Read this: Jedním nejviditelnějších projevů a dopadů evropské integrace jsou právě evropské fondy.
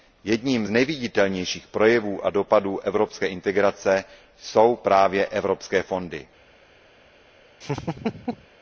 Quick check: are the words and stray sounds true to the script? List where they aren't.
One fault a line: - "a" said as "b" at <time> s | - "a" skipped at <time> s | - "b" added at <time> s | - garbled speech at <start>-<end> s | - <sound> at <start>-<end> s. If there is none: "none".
- laugh at 7.6-8.5 s